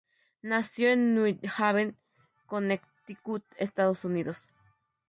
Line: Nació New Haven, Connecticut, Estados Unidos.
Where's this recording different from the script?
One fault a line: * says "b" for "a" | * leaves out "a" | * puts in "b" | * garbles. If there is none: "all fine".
* puts in "en"